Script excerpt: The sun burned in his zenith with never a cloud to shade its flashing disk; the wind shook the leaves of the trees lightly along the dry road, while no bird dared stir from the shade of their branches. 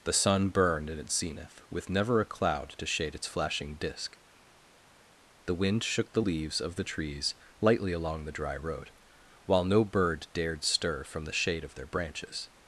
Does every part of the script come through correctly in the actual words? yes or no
no